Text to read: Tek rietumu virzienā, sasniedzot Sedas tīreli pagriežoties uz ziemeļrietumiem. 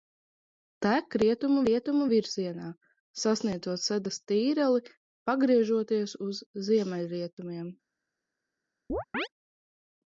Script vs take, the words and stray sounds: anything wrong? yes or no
yes